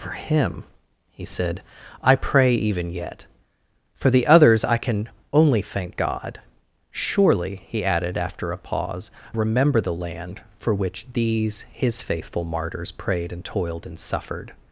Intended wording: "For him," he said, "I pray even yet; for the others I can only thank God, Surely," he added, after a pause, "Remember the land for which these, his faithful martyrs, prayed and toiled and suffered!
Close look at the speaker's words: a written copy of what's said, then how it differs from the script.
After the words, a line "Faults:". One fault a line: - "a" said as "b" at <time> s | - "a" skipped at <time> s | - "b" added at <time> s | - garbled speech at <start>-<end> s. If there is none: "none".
"For him," he said, "I pray even yet; for the others I can only thank God, Surely," he added, after a pause, "Remember the land for which these, his faithful martyrs, prayed and toiled and suffered!
Faults:
none